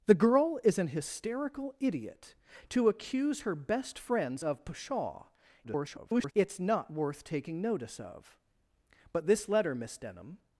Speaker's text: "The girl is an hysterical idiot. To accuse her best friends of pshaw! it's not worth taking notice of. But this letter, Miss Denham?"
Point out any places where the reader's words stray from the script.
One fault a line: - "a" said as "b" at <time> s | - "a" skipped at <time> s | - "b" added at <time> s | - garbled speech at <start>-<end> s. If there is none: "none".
- garbled speech at 5.6-6.3 s